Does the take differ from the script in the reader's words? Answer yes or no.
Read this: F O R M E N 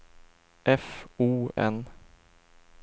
yes